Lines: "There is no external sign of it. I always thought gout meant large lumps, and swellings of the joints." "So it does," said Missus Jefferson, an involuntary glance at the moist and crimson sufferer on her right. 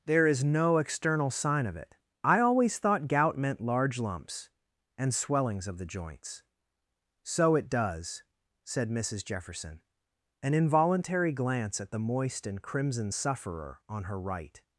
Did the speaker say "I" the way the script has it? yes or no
yes